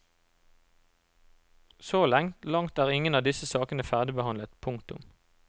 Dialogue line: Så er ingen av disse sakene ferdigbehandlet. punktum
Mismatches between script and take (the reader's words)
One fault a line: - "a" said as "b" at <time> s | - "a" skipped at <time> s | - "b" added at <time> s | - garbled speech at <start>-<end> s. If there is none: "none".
- "langt" added at 2.0 s